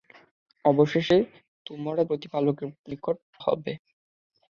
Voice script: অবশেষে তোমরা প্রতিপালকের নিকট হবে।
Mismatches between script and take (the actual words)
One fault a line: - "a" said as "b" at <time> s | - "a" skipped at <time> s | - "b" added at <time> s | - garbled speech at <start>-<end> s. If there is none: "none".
none